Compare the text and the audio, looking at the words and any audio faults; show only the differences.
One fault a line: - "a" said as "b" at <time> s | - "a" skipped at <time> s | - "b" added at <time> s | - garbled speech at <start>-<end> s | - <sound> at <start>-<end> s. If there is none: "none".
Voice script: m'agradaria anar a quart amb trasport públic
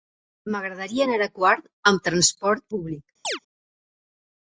- chirp at 3.2-3.4 s